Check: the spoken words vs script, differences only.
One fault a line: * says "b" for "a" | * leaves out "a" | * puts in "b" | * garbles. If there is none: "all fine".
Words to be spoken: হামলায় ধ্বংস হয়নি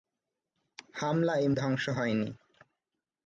all fine